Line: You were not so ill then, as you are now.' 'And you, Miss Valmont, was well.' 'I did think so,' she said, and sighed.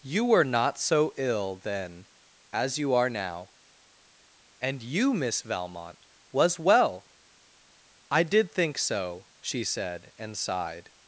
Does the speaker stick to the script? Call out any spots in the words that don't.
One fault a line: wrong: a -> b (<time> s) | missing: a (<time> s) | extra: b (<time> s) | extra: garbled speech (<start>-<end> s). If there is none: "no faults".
no faults